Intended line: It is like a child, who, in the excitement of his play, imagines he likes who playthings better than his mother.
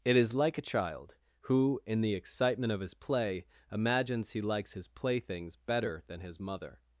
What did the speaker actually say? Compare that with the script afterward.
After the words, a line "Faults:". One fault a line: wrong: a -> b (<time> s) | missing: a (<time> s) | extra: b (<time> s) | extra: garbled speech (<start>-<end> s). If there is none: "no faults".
It is like a child, who, in the excitement of his play, imagines he likes his playthings better than his mother.
Faults:
wrong: who -> his (4.7 s)